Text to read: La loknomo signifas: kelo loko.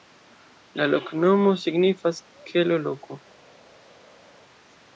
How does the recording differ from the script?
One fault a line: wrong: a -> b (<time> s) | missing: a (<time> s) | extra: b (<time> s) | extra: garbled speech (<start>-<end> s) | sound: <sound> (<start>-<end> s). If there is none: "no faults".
no faults